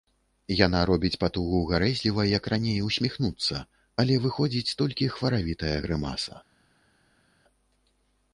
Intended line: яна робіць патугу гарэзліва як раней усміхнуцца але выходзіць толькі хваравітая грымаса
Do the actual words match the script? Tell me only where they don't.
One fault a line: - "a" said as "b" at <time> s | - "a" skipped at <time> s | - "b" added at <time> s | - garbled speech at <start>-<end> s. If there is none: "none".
none